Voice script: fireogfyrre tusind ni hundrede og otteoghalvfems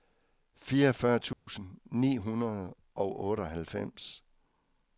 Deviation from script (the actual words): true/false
false